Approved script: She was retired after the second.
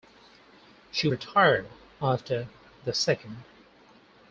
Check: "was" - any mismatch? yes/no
yes